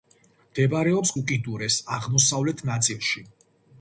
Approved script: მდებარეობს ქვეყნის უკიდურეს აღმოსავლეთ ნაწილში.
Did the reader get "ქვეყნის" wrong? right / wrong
wrong